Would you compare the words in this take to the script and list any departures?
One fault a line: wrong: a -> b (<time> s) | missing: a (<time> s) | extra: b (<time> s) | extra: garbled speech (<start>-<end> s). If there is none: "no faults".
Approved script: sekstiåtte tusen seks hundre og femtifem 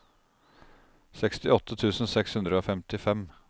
no faults